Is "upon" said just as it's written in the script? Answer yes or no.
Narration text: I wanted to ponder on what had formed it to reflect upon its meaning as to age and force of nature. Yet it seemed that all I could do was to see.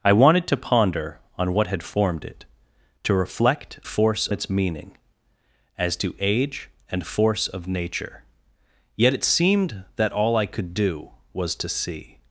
no